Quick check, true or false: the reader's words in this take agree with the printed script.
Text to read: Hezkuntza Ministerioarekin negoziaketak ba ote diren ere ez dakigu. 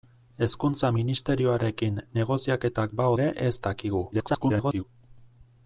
false